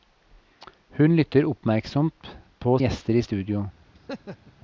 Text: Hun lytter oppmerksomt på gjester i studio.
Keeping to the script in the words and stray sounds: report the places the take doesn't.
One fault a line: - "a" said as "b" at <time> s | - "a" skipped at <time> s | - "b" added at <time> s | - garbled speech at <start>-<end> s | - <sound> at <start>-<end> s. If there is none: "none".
- laugh at 3.9-4.5 s